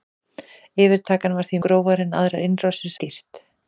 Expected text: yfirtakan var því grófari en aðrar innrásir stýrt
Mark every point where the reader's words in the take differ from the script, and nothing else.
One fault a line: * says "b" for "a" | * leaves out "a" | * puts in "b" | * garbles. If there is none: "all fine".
all fine